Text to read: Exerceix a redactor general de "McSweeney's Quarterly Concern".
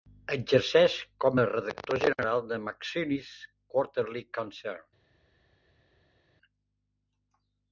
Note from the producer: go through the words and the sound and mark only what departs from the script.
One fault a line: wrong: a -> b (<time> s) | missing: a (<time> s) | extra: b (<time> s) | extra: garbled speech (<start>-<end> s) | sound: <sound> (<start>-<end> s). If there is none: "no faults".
extra: com (1.2 s)